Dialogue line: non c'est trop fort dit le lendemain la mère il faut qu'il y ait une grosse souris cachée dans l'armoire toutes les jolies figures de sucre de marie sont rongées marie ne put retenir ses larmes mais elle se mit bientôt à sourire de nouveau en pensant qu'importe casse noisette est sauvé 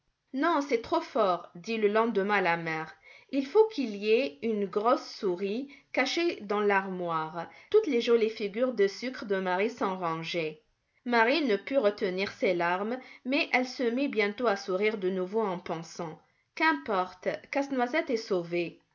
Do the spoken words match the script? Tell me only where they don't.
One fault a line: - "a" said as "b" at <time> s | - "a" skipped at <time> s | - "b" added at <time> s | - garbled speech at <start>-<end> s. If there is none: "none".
none